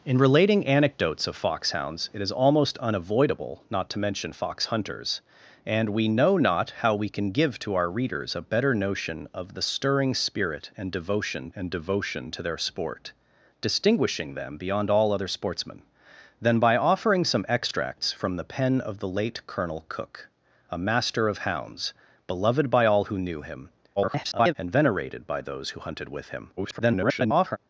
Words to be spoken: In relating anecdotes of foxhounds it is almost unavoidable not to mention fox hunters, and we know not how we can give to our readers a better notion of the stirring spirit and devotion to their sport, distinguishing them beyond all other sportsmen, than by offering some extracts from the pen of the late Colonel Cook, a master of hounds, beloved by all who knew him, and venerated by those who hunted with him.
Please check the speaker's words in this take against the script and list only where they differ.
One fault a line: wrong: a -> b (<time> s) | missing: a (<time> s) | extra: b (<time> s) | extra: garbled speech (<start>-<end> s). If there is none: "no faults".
extra: and devotion (11.5 s)
extra: garbled speech (24.0-24.5 s)
extra: garbled speech (26.6-27.6 s)